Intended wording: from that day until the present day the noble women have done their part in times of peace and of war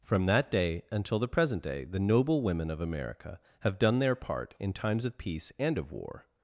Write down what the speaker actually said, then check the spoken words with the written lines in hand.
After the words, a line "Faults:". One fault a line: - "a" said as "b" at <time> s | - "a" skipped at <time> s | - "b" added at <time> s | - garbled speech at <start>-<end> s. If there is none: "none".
from that day until the present day the noble women of america have done their part in times of peace and of war
Faults:
- "of america" added at 2.7 s